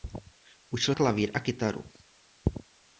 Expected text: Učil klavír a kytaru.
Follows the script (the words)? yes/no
yes